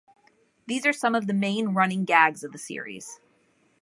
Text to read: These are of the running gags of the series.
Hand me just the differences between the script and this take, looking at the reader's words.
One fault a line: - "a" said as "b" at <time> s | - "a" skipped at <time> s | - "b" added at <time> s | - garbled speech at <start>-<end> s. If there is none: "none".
- "some" added at 0.9 s
- "main" added at 1.3 s